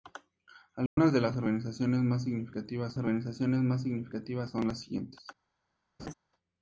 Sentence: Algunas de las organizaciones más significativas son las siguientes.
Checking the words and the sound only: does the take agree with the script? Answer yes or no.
no